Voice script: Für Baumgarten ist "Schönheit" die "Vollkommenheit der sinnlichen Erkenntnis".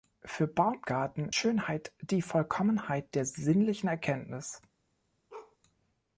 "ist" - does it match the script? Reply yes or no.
no